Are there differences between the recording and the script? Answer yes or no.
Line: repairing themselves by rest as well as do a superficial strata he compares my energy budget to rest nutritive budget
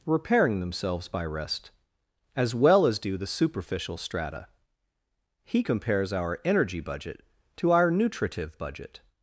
yes